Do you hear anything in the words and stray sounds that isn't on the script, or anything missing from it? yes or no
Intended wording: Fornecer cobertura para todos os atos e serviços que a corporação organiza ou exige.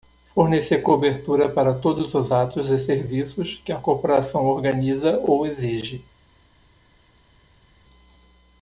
no